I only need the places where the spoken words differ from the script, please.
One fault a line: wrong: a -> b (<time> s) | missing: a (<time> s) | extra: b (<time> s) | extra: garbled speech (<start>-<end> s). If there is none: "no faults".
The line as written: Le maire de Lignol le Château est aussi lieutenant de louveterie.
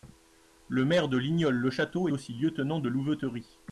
missing: est (2.1 s)